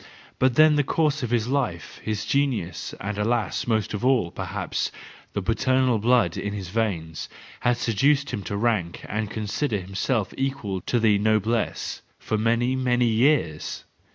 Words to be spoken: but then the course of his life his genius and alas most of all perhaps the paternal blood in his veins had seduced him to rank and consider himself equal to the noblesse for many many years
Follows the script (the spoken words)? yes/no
yes